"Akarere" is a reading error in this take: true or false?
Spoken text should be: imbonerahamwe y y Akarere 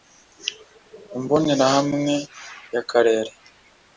false